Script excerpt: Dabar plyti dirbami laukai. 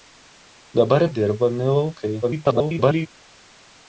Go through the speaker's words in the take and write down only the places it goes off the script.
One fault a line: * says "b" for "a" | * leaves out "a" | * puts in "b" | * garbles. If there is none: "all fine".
* leaves out "plyti"
* garbles